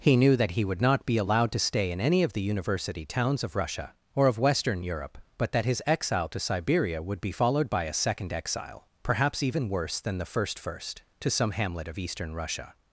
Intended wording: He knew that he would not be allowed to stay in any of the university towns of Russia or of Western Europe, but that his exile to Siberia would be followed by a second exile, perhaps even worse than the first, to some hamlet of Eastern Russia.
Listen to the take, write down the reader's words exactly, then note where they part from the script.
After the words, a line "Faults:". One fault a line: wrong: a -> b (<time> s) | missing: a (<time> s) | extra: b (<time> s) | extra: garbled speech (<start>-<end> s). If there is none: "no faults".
He knew that he would not be allowed to stay in any of the university towns of Russia or of Western Europe, but that his exile to Siberia would be followed by a second exile, perhaps even worse than the first first, to some hamlet of Eastern Russia.
Faults:
extra: first (10.6 s)